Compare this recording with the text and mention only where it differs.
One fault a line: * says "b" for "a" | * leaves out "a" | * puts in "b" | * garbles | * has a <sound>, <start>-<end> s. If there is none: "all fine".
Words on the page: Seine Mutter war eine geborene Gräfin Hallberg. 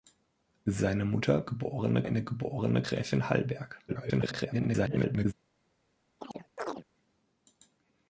* says "geborene" for "war"
* garbles
* has a chirp, 6.2-6.8 s